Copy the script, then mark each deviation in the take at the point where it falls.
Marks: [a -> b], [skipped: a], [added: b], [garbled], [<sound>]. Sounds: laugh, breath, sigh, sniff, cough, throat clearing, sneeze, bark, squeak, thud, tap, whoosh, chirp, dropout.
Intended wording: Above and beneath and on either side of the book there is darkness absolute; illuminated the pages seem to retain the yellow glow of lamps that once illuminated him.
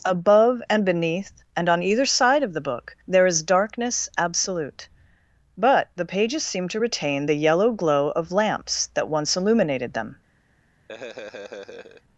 Above and beneath and on either side of the book there is darkness absolute; [illuminated -> but] the pages seem to retain the yellow glow of lamps that once illuminated [him. -> them] [laugh]